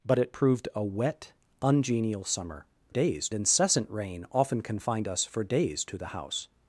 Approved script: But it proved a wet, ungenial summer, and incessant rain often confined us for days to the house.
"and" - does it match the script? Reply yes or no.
no